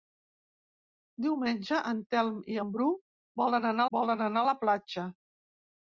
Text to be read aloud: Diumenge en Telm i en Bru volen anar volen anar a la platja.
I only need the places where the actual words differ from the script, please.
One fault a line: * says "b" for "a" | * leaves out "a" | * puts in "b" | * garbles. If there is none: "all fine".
all fine